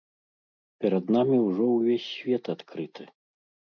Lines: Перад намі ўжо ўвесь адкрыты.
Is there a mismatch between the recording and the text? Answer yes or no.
yes